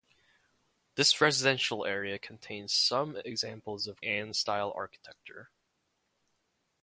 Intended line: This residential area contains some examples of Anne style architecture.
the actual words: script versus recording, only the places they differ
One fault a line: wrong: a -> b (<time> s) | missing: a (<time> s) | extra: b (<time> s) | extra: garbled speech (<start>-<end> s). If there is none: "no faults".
no faults